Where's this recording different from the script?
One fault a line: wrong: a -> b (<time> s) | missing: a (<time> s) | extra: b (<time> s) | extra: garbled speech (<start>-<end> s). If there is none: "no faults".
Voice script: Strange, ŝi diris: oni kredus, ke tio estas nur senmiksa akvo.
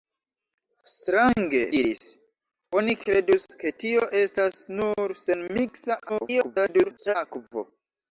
missing: ŝi (1.6 s)
extra: garbled speech (6.1-7.2 s)